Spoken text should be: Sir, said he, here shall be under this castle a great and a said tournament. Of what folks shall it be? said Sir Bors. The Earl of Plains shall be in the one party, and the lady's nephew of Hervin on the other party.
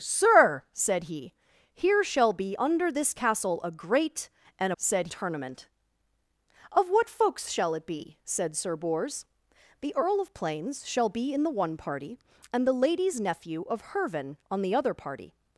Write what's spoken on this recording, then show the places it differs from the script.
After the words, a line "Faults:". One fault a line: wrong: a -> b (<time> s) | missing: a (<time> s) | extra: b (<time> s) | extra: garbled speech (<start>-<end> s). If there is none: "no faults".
Sir, said he, here shall be under this castle a great and a said tournament. Of what folks shall it be? said Sir Bors. The Earl of Plains shall be in the one party, and the lady's nephew of Hervin on the other party.
Faults:
no faults